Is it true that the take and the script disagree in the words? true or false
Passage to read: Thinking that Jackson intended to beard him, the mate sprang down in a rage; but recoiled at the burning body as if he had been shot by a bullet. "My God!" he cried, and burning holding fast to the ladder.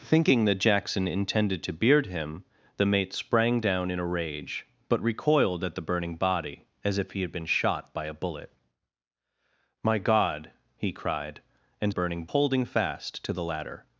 false